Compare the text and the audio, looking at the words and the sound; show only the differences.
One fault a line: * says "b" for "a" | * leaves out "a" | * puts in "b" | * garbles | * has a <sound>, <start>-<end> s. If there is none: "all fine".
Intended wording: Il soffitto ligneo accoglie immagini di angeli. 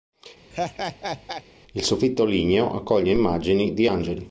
* has a laugh, 0.5-1.4 s